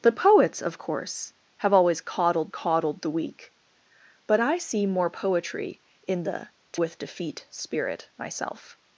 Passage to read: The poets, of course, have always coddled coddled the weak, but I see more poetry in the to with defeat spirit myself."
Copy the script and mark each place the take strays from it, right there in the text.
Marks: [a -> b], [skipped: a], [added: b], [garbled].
The poets, of course, have always coddled coddled the weak, but I see more poetry in the to with defeat spirit myself."